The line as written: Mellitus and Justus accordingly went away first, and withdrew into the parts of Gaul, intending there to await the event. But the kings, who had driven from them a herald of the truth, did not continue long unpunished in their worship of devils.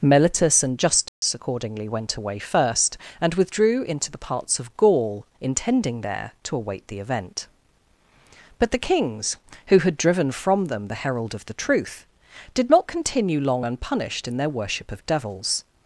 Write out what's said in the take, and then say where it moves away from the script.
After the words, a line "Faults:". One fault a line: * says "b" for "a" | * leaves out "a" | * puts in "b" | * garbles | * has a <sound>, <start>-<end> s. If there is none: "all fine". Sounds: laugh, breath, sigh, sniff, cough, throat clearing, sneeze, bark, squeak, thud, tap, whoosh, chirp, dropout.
Mellitus and Justus accordingly went away first, and withdrew into the parts of Gaul, intending there to await the event. But the kings, who had driven from them the herald of the truth, did not continue long unpunished in their worship of devils.
Faults:
* has a dropout, 1.1-1.2 s
* says "the" for "a"